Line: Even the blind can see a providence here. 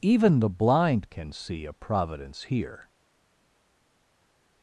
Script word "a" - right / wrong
right